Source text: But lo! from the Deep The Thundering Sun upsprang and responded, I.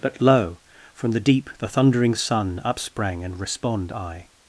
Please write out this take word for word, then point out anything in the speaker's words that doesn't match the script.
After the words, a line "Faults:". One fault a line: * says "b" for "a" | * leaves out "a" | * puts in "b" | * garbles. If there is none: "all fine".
But lo! from the Deep The Thundering Sun upsprang and respond, I.
Faults:
* says "respond" for "responded"